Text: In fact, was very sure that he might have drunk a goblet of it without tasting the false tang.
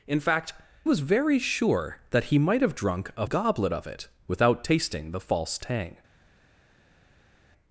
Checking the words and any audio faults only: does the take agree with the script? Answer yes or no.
yes